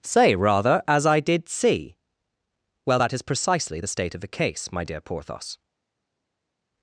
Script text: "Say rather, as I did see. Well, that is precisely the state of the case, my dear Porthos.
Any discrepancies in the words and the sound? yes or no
no